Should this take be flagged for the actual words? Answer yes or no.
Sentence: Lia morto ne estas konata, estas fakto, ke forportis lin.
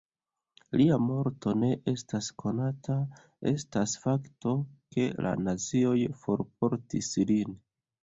yes